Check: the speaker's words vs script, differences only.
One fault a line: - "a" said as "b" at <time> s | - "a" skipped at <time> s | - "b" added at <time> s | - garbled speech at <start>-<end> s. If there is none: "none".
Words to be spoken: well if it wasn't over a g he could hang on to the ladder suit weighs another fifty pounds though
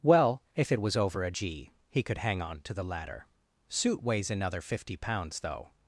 - "wasn't" said as "was" at 0.8 s